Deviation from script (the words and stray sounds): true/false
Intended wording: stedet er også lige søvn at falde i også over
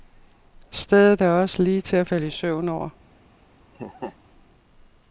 true